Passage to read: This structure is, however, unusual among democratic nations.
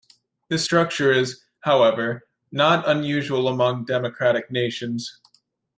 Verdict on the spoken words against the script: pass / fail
fail